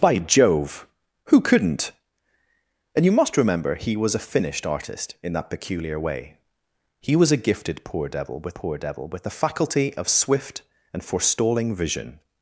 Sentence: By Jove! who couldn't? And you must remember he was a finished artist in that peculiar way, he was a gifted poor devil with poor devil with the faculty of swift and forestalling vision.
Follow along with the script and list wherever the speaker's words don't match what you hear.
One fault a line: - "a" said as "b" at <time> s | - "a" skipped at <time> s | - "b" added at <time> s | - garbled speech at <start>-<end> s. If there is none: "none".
none